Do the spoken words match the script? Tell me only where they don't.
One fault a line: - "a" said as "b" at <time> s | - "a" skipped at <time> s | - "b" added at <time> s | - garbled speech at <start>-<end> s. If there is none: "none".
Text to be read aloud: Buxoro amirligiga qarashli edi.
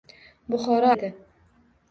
- "amirligiga qarashli" skipped at 0.9 s